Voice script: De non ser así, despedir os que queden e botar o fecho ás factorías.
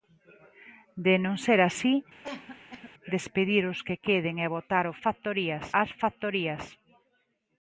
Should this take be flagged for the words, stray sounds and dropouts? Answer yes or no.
yes